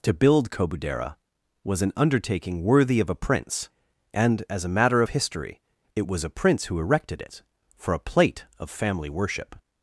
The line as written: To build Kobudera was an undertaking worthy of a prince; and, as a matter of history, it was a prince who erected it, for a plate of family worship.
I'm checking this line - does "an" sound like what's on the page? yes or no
yes